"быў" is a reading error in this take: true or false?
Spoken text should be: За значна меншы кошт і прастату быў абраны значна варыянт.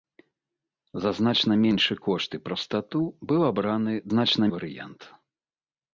false